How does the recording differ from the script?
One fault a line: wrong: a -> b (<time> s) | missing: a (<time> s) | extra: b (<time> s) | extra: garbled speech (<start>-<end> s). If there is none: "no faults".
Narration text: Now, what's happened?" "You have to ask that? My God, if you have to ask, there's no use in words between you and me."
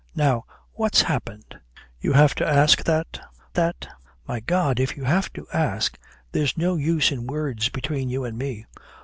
extra: that (3.5 s)